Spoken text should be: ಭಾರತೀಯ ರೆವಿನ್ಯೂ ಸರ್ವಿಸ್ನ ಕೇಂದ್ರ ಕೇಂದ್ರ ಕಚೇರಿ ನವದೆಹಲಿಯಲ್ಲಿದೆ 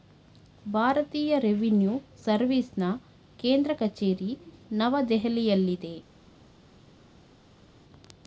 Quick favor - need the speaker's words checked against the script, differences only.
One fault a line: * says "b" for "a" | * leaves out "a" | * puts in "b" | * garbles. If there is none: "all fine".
* leaves out "ಕೇಂದ್ರ"